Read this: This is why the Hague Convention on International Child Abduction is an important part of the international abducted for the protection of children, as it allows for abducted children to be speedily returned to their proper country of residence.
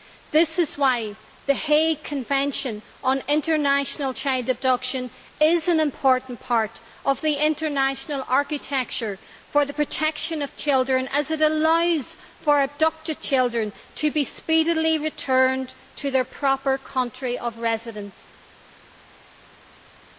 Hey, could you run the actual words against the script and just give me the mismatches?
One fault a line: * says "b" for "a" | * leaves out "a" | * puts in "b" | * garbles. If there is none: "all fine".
* says "architecture" for "abducted"